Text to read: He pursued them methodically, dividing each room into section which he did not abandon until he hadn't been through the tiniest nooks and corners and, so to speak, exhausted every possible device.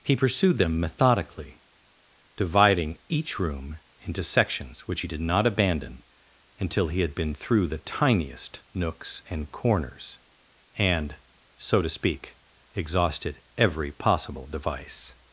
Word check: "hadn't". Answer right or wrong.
wrong